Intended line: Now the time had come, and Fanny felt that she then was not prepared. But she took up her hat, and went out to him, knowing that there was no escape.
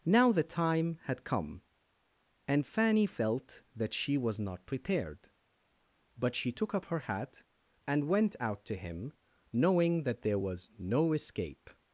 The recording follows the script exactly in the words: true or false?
false